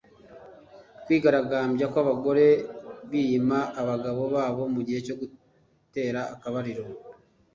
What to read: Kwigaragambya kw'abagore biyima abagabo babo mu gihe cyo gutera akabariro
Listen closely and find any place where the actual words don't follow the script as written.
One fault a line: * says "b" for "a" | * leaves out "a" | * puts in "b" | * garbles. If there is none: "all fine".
all fine